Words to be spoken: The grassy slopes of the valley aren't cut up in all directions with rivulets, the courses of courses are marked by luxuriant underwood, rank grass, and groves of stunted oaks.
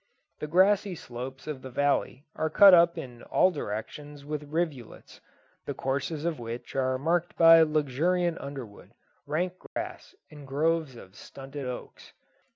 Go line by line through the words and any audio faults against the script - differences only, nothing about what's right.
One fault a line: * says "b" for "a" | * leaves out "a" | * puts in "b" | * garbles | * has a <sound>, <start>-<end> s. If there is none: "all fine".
* says "are" for "aren't"
* says "which" for "courses"
* has a dropout, 9.7-9.8 s